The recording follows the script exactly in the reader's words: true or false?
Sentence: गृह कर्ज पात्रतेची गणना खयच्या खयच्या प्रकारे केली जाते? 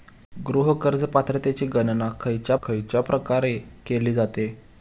true